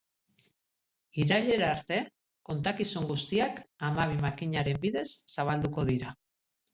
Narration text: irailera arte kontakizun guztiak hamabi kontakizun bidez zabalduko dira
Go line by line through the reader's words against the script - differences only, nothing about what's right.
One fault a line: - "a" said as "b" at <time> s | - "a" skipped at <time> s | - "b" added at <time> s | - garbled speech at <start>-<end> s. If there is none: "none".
- "kontakizun" said as "makinaren" at 4.2 s